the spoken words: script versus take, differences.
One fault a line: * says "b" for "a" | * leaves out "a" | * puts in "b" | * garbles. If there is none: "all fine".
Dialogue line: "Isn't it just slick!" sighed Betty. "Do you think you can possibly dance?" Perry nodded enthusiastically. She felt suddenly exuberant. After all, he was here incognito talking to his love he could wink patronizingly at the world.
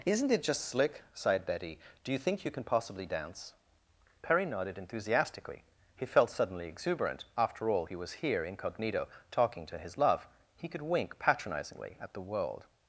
* says "He" for "She"